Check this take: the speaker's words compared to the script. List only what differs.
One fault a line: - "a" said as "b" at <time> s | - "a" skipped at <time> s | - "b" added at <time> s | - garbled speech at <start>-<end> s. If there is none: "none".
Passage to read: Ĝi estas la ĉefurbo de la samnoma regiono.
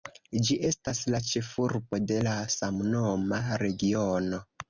none